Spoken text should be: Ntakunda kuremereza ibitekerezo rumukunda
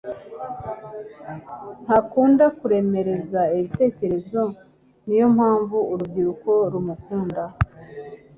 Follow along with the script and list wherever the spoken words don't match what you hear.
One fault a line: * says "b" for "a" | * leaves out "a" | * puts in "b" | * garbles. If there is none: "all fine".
* puts in "niyo mpamvu urubyiruko"